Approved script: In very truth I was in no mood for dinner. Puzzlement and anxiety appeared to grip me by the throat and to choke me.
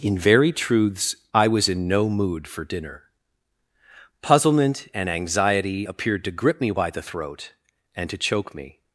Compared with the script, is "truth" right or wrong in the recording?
wrong